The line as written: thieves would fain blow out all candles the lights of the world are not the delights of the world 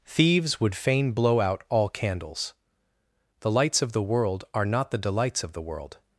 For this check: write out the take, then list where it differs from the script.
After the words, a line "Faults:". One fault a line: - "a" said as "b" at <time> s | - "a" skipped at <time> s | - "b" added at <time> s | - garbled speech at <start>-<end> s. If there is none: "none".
thieves would fain blow out all candles the lights of the world are not the delights of the world
Faults:
none